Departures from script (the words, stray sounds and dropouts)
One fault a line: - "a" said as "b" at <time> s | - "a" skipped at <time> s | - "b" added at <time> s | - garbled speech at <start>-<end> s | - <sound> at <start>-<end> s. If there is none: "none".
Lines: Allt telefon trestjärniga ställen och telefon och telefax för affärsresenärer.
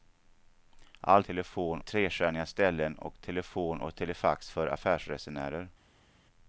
none